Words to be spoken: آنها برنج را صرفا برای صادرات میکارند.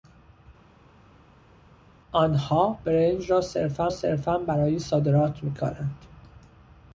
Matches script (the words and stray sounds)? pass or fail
fail